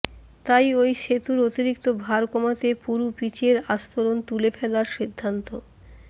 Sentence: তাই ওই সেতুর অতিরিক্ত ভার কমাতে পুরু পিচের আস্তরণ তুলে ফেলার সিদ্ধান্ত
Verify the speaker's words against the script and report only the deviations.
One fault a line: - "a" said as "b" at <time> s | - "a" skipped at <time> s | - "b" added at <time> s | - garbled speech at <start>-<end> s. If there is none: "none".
none